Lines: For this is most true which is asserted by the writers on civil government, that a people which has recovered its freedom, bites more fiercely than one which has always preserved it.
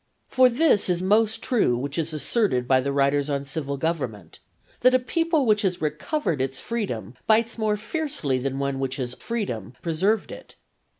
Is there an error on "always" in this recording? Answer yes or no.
yes